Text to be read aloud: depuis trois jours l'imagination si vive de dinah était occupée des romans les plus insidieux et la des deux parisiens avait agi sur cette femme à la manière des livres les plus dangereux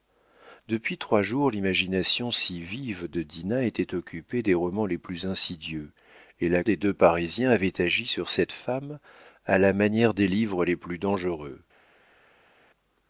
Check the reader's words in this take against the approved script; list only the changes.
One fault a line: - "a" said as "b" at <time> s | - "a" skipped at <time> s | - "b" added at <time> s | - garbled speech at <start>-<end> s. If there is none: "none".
none